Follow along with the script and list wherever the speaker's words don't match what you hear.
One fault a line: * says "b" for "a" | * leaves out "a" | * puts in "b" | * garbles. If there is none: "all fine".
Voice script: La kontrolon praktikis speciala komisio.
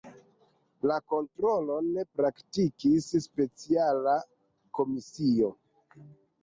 all fine